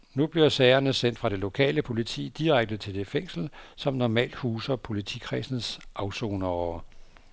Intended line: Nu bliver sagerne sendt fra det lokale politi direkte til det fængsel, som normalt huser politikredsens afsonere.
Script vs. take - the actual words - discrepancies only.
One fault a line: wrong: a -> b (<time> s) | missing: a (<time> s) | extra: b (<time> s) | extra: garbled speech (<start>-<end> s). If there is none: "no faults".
no faults